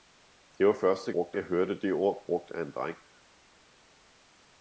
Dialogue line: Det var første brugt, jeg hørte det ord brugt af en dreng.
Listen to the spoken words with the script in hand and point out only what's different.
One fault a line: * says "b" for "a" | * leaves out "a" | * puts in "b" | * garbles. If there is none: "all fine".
all fine